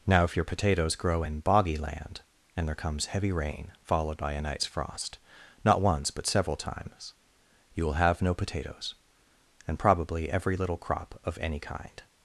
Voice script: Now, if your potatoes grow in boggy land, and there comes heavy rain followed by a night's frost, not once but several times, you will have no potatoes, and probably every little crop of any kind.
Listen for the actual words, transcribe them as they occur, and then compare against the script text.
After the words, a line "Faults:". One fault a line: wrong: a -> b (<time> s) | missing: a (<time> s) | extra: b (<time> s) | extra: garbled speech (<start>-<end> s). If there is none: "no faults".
Now, if your potatoes grow in boggy land, and there comes heavy rain followed by a night's frost, not once but several times, you will have no potatoes, and probably every little crop of any kind.
Faults:
no faults